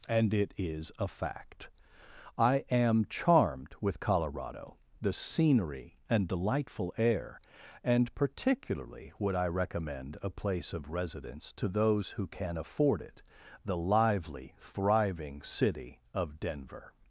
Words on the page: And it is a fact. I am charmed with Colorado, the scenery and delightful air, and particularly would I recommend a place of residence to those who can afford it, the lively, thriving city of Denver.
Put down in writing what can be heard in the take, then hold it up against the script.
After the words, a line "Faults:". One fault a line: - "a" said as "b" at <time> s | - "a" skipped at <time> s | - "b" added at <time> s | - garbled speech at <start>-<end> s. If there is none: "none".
And it is a fact. I am charmed with Colorado, the scenery and delightful air, and particularly would I recommend a place of residence to those who can afford it, the lively, thriving city of Denver.
Faults:
none